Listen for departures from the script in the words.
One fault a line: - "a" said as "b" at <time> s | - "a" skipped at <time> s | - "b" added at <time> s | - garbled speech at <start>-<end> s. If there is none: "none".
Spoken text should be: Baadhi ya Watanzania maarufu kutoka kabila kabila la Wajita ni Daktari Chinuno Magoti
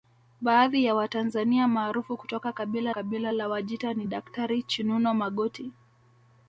none